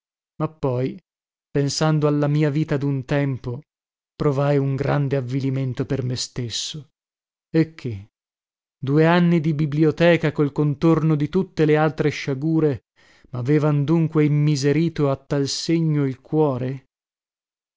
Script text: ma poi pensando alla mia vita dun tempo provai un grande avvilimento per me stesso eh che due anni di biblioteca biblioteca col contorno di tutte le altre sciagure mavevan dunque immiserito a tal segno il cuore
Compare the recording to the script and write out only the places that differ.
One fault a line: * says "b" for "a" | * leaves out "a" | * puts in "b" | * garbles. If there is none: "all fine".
* leaves out "biblioteca"